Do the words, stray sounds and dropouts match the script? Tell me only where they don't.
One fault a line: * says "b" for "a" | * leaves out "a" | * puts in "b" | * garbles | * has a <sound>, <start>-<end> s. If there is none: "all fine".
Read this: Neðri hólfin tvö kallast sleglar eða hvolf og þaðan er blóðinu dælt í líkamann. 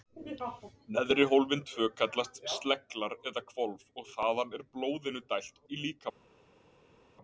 all fine